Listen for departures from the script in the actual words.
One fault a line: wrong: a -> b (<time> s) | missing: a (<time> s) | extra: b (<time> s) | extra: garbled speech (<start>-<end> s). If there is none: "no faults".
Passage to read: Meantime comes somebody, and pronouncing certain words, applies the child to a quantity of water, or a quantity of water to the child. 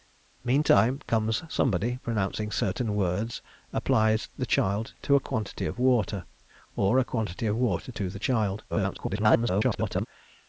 missing: and (2.0 s)
extra: garbled speech (8.7-10.1 s)